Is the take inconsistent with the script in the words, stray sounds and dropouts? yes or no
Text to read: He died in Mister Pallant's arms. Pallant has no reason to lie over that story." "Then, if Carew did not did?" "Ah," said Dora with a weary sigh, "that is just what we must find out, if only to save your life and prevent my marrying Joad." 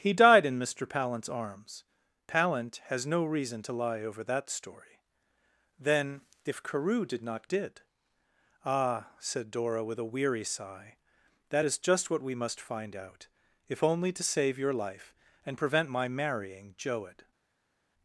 no